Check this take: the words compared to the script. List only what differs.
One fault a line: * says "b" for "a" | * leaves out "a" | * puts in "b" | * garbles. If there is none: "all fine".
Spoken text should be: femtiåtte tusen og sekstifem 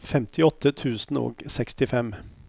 all fine